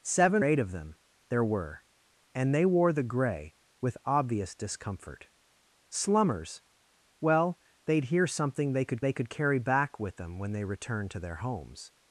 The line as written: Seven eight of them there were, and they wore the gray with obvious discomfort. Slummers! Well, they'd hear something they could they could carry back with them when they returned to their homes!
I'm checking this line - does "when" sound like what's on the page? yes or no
yes